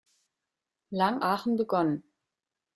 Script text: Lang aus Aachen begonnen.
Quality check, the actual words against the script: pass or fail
fail